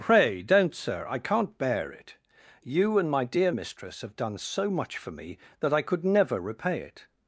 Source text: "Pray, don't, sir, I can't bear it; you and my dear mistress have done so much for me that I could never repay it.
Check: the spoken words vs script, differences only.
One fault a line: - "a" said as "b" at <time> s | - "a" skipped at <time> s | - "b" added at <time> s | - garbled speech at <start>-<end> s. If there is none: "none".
none